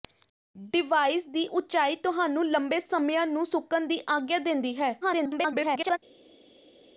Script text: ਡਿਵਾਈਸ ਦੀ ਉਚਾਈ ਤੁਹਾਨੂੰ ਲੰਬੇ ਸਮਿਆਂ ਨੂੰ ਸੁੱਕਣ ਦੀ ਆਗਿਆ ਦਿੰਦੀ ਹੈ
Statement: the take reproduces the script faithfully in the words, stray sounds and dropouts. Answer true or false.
false